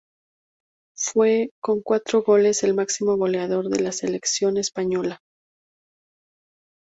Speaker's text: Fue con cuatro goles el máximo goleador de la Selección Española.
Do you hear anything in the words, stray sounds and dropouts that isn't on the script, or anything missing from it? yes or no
no